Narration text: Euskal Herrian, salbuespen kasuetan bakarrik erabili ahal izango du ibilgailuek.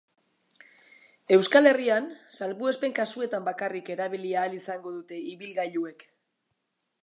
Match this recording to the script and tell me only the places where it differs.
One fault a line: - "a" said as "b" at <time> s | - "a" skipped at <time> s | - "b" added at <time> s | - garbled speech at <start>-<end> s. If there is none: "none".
- "du" said as "dute" at 5.0 s